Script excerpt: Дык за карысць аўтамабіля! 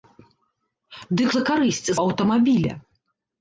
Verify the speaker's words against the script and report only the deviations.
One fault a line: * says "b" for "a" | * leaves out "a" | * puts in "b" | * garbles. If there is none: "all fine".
all fine